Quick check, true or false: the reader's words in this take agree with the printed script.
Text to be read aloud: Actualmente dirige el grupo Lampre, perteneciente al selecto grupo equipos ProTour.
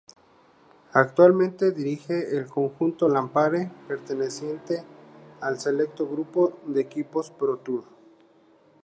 false